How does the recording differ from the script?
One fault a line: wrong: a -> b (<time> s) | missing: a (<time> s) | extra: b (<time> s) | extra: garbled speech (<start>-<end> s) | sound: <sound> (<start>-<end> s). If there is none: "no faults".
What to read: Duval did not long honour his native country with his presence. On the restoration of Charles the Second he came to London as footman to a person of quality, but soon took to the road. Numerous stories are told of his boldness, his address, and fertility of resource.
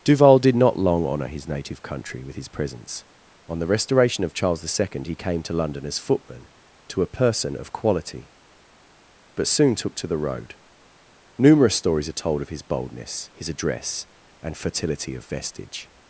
wrong: resource -> vestige (15.2 s)